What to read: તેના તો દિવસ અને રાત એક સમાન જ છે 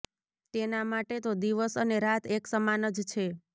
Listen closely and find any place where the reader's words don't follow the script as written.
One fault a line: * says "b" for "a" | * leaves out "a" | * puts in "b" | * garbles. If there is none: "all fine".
* puts in "માટે"